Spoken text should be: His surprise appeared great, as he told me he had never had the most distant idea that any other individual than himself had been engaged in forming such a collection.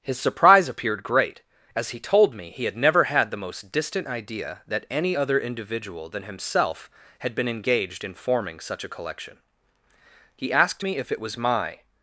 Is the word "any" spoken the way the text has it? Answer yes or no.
yes